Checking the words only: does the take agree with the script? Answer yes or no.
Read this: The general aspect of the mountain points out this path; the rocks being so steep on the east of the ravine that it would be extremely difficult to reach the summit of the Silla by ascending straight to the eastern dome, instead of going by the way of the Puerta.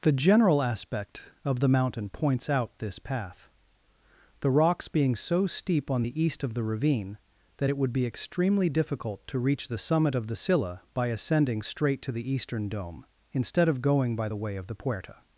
yes